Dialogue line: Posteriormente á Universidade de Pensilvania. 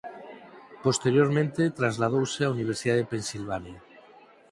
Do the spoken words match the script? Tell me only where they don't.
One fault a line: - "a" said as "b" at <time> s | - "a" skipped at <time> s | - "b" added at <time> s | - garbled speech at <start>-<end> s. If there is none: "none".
- "trasladouse" added at 1.8 s